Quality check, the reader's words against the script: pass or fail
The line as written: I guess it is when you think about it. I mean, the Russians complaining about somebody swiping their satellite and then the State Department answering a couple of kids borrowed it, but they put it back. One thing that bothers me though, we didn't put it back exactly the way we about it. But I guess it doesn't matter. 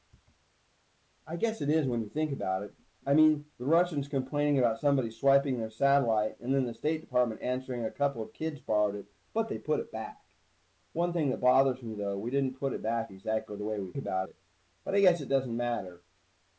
pass